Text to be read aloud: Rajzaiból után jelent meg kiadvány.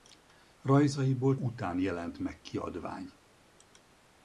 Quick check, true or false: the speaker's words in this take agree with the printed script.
true